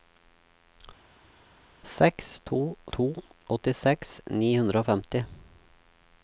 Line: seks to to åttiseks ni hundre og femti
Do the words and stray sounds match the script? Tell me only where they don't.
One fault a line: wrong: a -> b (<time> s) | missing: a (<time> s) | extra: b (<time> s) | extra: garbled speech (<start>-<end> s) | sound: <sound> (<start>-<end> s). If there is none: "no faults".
no faults